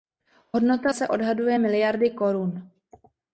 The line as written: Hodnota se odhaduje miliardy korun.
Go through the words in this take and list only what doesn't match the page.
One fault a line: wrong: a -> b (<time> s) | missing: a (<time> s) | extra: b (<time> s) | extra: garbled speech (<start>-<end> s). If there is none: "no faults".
no faults